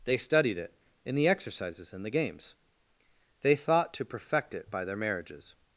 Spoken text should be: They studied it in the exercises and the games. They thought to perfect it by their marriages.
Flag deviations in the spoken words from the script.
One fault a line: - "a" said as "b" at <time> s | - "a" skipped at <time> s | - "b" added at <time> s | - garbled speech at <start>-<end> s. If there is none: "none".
none